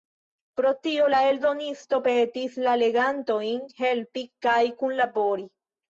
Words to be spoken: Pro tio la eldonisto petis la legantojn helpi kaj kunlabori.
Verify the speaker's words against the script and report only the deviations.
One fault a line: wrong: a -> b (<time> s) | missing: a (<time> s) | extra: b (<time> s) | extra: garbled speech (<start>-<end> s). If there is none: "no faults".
no faults